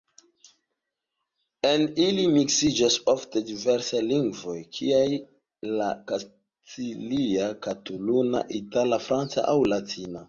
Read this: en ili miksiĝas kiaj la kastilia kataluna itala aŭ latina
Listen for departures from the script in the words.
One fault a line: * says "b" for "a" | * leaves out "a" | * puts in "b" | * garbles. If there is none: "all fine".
* puts in "ofte diversaj lingvoj"
* puts in "franca"